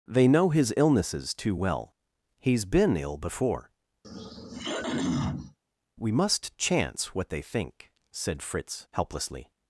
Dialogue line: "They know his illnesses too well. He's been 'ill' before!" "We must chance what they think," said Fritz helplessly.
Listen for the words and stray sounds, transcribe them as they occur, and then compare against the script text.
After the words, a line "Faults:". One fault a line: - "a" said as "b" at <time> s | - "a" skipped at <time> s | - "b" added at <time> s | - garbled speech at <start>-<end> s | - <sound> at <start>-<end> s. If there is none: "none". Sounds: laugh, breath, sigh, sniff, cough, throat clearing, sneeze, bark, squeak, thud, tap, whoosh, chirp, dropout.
"They know his illnesses too well. He's been 'ill' before!" "We must chance what they think," said Fritz helplessly.
Faults:
- throat clearing at 4.0-5.6 s